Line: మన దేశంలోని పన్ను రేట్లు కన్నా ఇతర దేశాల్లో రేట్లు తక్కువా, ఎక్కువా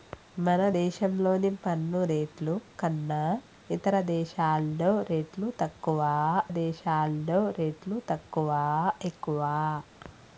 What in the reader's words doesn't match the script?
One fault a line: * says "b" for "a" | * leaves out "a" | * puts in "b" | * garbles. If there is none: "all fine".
* puts in "దేశాల్లో రేట్లు తక్కువా"